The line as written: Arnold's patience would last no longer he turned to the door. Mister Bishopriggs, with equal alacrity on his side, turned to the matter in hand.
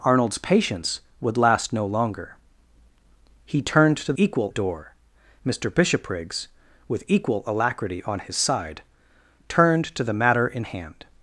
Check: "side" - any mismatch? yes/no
no